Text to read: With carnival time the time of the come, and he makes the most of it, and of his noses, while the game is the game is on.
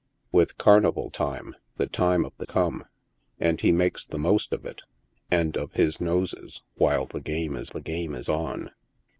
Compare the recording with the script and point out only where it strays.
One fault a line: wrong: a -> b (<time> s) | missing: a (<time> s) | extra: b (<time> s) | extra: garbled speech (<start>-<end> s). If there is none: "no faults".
no faults